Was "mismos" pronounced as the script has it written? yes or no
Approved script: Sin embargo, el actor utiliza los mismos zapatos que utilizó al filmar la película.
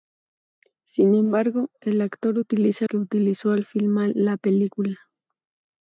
no